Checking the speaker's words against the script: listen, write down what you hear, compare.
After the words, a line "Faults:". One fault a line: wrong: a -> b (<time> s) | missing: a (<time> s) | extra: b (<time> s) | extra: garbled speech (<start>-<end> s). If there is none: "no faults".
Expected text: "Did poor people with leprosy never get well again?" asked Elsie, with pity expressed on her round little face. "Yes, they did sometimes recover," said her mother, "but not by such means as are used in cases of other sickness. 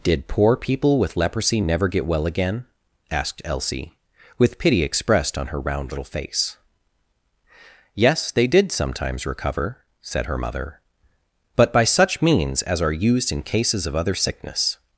"Did poor people with leprosy never get well again?" asked Elsie, with pity expressed on her round little face. "Yes, they did sometimes recover," said her mother, "but by such means as are used in cases of other sickness.
Faults:
missing: not (11.7 s)